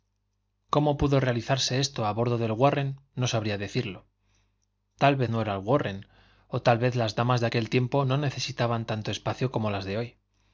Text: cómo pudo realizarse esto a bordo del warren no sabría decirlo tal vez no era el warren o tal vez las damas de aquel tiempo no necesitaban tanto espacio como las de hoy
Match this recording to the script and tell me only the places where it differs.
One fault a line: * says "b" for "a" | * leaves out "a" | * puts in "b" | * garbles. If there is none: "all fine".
all fine